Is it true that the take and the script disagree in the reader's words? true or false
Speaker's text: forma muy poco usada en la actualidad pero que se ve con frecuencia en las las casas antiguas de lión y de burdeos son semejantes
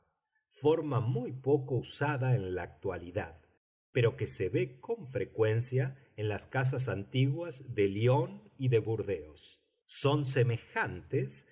true